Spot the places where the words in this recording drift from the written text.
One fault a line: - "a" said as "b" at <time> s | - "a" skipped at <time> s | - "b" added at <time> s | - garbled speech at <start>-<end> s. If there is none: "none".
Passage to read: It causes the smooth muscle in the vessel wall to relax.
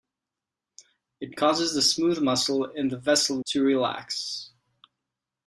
- "wall" skipped at 3.4 s